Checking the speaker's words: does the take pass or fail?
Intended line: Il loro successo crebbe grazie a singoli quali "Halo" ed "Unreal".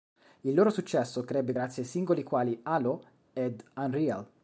pass